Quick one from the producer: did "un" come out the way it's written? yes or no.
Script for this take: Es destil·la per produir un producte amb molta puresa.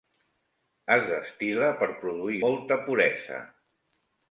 no